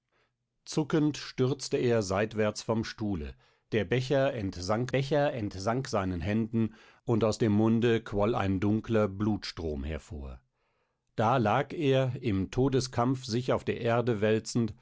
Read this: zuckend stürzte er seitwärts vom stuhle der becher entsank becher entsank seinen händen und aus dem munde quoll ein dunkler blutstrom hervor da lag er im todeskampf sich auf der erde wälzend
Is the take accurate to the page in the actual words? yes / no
yes